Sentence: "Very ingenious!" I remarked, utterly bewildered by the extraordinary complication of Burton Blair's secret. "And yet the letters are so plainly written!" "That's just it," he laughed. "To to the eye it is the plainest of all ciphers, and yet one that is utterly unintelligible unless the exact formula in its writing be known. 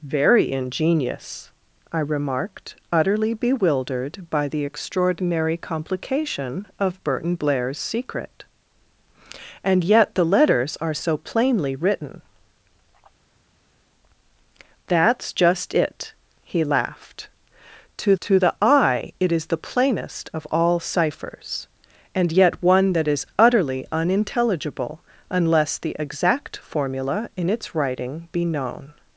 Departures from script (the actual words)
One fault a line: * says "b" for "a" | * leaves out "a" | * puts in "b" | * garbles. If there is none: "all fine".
all fine